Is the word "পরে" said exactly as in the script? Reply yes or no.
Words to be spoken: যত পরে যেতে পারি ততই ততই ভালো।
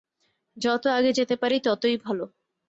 no